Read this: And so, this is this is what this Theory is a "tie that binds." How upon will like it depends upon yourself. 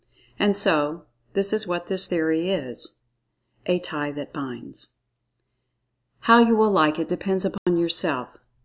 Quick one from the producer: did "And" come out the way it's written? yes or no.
yes